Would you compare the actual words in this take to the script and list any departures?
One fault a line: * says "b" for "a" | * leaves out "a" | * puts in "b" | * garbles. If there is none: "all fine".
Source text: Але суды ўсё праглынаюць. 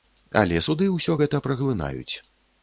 * puts in "гэта"